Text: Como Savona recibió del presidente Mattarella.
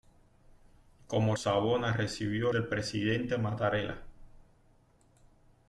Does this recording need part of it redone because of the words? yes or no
no